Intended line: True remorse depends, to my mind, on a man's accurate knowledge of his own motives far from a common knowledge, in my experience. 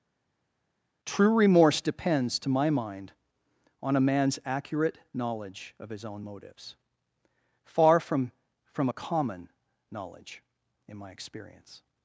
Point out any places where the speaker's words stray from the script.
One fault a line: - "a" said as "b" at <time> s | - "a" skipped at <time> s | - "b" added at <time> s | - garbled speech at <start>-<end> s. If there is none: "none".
- "from" added at 8.7 s